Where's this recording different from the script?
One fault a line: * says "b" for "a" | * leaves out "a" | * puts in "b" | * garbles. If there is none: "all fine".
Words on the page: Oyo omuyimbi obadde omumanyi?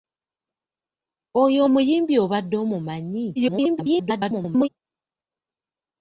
* garbles